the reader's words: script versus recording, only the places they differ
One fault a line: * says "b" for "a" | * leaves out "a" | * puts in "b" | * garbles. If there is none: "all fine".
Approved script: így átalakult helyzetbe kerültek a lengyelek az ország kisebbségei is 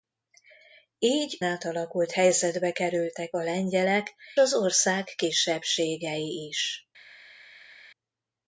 all fine